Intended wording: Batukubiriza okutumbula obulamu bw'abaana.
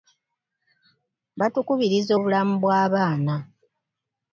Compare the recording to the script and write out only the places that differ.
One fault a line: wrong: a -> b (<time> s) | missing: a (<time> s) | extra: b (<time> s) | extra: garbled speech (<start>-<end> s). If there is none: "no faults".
missing: okutumbula (2.1 s)